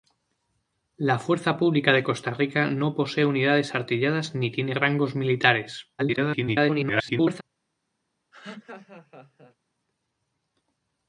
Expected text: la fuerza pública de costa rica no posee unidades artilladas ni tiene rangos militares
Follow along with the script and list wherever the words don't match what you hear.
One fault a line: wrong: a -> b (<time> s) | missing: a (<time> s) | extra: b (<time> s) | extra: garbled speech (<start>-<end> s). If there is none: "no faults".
extra: garbled speech (6.0-7.4 s)